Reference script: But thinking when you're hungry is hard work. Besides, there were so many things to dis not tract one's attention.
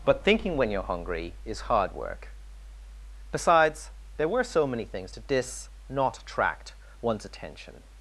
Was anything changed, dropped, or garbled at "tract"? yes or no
yes